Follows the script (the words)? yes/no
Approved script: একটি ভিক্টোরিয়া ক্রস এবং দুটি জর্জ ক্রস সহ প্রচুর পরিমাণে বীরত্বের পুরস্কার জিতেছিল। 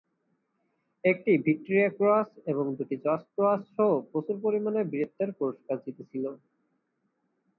yes